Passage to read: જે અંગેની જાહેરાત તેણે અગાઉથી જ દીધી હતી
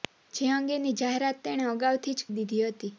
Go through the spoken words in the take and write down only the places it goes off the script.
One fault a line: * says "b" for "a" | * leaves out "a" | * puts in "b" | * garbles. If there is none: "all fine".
all fine